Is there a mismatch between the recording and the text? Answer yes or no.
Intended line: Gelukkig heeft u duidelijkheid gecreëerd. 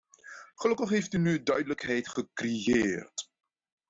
yes